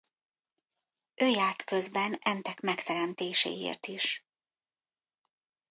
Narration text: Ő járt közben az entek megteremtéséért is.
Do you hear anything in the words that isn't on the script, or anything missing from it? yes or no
yes